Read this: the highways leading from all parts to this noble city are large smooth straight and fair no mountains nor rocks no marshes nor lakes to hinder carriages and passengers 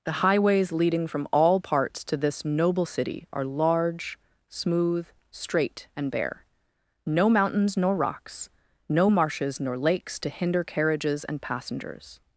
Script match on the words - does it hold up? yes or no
no